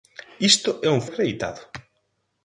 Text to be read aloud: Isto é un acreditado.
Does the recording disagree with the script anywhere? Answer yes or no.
no